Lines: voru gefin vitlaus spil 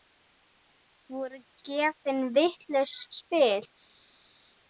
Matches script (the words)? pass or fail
pass